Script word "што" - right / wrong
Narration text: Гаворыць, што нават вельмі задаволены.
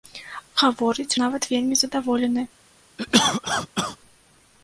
wrong